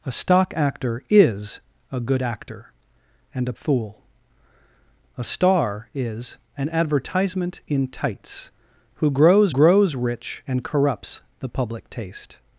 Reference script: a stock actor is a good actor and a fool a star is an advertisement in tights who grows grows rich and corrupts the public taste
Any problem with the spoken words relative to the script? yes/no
no